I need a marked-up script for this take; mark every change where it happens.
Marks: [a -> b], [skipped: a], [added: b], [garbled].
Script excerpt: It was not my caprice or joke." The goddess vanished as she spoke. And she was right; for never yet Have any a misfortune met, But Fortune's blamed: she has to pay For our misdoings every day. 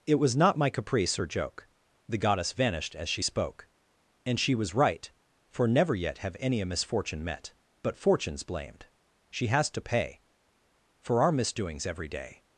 It was not my caprice or joke." The goddess vanished as she spoke. And she was right; for never yet Have any a misfortune met, But Fortune's blamed: she has to pay For our misdoings every day.